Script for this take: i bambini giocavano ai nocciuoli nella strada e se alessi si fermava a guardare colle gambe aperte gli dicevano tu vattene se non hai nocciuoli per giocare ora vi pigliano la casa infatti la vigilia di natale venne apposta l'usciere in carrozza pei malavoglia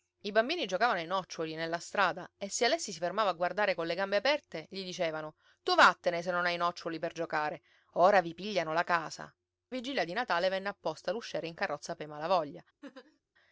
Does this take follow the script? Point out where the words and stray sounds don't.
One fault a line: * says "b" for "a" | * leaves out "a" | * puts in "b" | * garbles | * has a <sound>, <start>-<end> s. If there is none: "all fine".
* leaves out "infatti la"
* has a laugh, 12.8-13.2 s